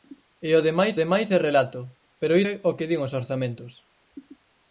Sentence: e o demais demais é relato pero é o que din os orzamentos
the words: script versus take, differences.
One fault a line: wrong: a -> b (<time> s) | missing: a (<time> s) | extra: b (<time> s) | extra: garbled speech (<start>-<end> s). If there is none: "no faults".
no faults